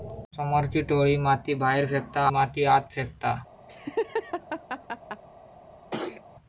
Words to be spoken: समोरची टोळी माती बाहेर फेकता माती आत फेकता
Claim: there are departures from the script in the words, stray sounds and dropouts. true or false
true